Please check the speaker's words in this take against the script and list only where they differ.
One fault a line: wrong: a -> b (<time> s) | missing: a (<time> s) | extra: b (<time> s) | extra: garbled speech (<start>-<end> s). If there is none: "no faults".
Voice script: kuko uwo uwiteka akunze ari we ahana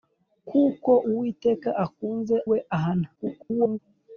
missing: uwo (0.9 s)
missing: ari (2.4 s)
extra: garbled speech (3.2-3.8 s)